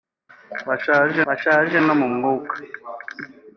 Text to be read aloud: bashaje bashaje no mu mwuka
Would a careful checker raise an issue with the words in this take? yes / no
no